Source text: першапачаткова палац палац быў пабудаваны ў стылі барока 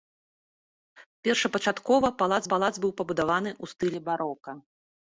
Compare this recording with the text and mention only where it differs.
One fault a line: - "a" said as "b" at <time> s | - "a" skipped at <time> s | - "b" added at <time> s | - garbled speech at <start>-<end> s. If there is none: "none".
none